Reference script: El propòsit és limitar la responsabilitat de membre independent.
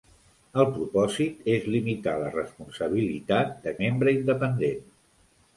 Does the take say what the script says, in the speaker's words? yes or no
yes